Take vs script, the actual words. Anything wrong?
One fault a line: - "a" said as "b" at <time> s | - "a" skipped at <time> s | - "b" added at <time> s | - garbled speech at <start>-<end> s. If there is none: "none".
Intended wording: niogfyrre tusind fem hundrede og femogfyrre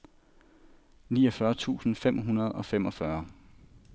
none